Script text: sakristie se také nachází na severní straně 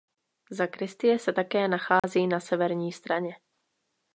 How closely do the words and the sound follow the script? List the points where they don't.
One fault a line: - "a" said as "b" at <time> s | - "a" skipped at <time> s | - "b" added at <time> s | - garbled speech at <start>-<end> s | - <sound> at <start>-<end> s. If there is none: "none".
- dropout at 2.0-2.0 s